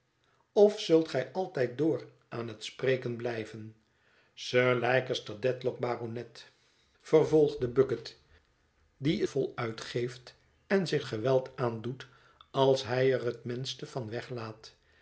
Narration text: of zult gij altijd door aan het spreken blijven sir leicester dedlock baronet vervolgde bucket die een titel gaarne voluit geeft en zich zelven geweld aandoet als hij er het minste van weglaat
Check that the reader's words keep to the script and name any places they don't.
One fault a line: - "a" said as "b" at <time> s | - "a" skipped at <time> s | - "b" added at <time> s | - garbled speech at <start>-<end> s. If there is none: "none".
- "een titel gaarne" skipped at 9.2 s
- "zelven" skipped at 11.1 s